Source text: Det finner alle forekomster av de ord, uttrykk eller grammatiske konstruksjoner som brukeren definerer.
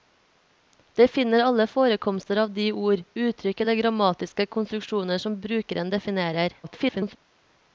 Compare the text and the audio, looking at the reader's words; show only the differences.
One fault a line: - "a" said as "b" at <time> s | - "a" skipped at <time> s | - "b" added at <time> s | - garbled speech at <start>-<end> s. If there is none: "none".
- garbled speech at 6.6-7.2 s